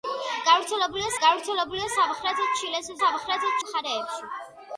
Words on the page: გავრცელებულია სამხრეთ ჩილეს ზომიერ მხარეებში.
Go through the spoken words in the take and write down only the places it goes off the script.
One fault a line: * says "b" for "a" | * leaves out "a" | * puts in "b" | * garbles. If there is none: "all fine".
* puts in "გავრცელებულია"
* says "სამხრეთ" for "ზომიერ"